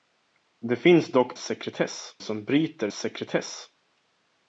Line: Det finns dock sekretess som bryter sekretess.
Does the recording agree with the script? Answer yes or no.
yes